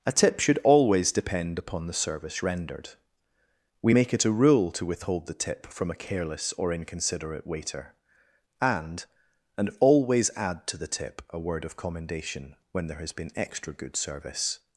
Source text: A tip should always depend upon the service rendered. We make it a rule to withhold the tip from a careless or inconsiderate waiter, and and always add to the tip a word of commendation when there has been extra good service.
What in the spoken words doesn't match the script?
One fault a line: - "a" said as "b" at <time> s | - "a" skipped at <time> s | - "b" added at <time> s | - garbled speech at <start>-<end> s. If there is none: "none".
none